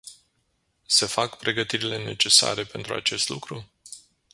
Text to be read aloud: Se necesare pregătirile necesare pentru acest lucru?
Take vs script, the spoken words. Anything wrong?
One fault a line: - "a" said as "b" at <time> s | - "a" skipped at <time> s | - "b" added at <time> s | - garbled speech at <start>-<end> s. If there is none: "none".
- "necesare" said as "fac" at 1.1 s